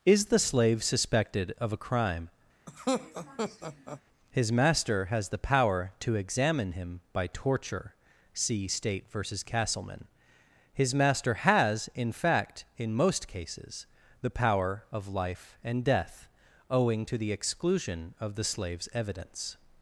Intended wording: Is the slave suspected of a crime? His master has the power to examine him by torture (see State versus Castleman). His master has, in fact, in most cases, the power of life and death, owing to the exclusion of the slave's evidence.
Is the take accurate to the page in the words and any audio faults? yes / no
no